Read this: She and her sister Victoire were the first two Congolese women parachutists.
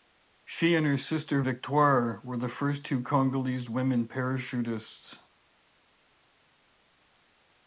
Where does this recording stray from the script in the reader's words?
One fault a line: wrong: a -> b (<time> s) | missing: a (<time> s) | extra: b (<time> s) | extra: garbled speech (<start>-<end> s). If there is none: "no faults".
no faults